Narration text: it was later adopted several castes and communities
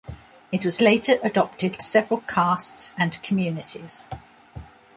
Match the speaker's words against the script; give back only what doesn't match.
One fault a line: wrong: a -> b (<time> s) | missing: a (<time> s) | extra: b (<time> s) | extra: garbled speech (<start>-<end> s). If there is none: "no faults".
no faults